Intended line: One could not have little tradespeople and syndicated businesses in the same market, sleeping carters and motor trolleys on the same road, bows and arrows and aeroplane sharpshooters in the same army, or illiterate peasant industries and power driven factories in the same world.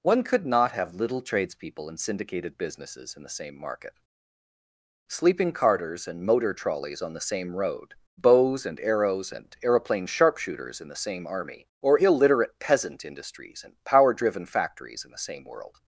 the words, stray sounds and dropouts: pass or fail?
pass